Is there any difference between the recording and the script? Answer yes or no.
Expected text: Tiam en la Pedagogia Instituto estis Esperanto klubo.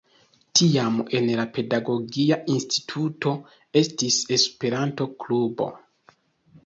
no